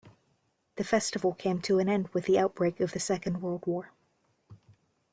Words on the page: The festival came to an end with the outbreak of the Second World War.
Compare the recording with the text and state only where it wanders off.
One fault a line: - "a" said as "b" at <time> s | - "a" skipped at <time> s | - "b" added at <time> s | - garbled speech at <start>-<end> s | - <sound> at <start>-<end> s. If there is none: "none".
none